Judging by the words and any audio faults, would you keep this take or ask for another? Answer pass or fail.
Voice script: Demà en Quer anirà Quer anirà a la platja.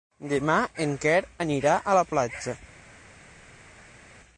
fail